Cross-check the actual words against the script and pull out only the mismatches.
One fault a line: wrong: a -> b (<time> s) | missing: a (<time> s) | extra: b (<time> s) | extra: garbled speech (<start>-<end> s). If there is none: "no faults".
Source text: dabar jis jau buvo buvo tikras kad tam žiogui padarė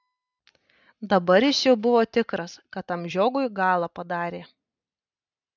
missing: buvo (2.0 s)
extra: galą (3.6 s)